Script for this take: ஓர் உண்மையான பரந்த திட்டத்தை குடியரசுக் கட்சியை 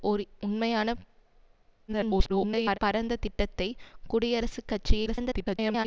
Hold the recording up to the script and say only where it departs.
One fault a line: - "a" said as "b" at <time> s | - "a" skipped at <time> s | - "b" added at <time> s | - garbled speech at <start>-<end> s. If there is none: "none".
- garbled speech at 1.9-2.8 s
- garbled speech at 5.1-5.9 s